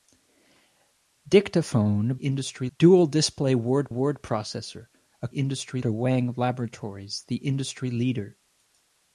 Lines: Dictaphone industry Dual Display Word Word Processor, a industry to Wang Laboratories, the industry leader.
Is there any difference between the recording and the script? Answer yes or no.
no